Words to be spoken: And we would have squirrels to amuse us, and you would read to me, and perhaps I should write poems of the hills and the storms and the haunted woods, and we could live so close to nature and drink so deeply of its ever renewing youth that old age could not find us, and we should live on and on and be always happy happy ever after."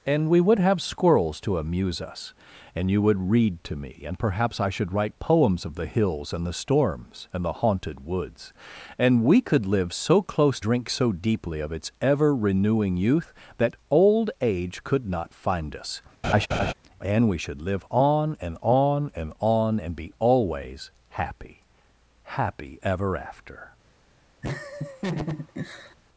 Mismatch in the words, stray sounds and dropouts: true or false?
true